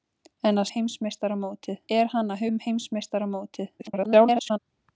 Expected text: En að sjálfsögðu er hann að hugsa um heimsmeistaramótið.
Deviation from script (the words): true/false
true